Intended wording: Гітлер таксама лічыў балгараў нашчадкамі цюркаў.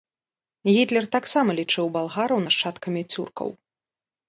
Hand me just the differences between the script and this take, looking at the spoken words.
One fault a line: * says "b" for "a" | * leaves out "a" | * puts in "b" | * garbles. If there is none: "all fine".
all fine